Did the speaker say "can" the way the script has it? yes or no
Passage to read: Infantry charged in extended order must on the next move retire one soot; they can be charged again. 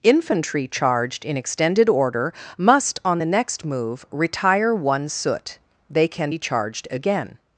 yes